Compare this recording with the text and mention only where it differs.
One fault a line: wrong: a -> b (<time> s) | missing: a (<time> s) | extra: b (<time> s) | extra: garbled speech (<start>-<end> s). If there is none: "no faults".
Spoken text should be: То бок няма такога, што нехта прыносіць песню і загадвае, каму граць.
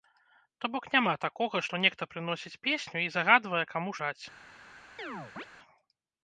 no faults